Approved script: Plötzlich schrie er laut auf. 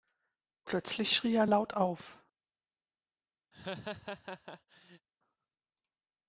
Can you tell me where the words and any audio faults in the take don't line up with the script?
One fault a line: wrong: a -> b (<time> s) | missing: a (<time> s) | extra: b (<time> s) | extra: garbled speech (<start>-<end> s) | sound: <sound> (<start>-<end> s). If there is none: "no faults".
sound: laugh (3.5-5.1 s)